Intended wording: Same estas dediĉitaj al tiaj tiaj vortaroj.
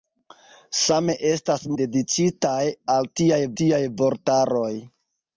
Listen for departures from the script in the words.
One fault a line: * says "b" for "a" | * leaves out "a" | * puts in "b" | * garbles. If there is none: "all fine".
all fine